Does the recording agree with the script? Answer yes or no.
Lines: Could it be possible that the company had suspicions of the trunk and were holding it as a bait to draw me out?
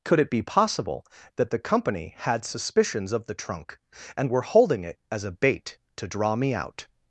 yes